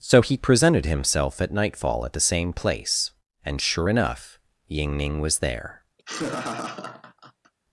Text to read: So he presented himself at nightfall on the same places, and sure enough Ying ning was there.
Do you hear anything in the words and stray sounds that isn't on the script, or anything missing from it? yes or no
yes